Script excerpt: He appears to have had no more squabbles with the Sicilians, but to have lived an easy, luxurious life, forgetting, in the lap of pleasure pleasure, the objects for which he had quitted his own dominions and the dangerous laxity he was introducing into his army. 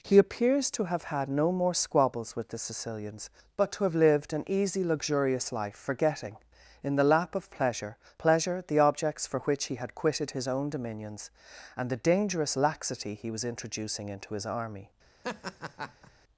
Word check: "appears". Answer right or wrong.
right